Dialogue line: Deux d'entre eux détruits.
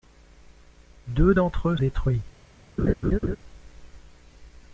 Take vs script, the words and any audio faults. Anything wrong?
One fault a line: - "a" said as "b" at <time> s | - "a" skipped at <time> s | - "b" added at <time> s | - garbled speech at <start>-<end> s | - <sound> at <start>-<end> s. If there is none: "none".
- laugh at 2.8-3.4 s